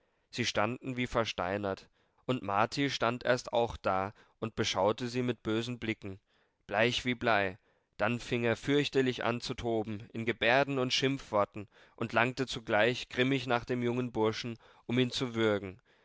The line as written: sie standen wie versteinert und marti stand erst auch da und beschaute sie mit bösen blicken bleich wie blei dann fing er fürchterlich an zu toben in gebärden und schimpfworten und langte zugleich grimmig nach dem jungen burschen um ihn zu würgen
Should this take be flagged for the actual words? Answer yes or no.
no